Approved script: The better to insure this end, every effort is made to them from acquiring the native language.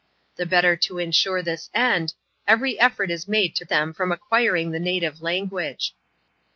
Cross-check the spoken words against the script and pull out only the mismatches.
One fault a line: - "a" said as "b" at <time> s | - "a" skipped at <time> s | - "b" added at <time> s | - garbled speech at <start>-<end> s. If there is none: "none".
none